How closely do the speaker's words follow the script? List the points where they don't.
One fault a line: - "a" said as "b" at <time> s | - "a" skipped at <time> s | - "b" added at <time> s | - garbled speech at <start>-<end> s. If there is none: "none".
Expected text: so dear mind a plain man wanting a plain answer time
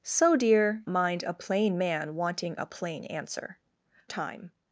none